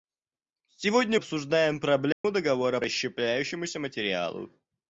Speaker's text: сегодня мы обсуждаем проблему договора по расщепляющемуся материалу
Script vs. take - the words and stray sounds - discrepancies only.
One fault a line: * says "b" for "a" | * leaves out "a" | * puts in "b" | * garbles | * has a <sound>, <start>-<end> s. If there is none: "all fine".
* leaves out "мы"
* has a dropout, 2.1-2.2 s
* leaves out "по"